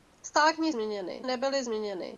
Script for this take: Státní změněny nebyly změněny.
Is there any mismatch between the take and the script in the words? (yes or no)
no